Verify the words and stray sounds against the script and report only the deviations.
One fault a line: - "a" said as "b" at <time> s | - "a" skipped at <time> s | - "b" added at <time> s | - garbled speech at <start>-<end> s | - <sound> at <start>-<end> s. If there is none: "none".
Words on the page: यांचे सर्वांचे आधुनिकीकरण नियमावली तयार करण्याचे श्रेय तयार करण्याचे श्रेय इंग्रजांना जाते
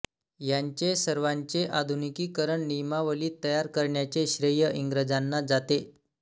- "तयार करण्याचे श्रेय" skipped at 4.7 s